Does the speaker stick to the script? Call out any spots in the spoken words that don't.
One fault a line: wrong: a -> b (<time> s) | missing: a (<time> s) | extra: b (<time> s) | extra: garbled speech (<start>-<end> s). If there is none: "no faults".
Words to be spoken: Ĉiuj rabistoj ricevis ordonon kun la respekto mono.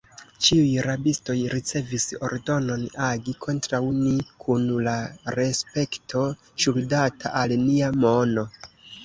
extra: agi kontraŭ ni (3.1 s)
extra: ŝuldata al nia (6.7 s)